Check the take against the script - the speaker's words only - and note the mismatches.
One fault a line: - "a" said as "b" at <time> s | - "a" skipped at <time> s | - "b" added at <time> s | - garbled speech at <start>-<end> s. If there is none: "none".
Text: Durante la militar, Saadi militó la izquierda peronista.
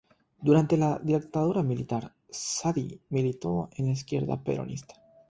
- "dictadura" added at 1.0 s
- "en" added at 3.8 s